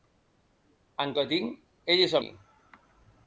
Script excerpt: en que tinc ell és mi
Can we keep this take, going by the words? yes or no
yes